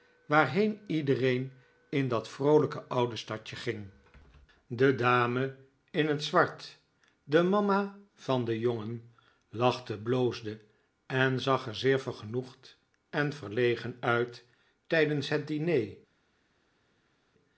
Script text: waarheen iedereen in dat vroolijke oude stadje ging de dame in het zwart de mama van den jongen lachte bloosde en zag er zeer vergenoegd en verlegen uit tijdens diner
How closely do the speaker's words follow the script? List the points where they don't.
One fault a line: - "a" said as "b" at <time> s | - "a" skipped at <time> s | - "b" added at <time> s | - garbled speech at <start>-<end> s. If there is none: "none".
- "het" added at 15.3 s